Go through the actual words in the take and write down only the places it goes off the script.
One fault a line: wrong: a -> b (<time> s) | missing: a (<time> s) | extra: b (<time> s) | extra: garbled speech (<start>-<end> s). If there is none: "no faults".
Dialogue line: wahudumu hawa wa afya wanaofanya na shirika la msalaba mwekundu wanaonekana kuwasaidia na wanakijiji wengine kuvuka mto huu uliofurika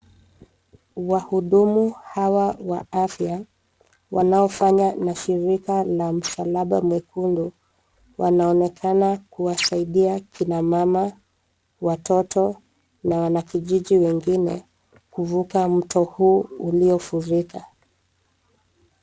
extra: kina mama watoto (10.2 s)